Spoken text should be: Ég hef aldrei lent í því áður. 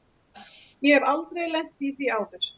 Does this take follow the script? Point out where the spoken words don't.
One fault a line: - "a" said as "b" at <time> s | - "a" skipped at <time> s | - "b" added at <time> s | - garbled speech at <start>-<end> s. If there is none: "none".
none